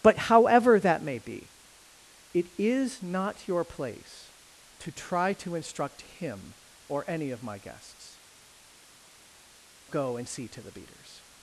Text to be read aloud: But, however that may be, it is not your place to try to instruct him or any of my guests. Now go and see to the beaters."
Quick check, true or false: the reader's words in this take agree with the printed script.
false